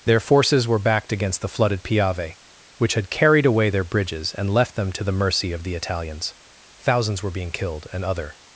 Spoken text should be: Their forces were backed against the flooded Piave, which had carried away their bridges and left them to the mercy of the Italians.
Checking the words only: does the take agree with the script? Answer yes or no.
no